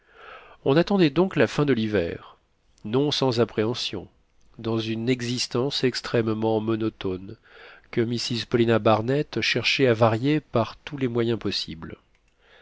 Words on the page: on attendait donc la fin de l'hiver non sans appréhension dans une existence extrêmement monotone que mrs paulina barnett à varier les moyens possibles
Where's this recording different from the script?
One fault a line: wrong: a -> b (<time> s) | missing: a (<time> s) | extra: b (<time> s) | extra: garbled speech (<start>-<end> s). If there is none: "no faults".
extra: cherchait (9.4 s)
extra: par tous (10.4 s)